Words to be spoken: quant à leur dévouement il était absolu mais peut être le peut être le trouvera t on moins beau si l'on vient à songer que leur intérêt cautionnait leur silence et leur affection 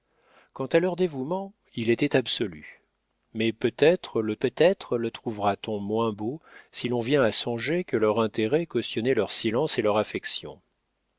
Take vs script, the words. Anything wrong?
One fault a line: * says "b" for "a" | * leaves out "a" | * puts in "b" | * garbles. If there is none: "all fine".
all fine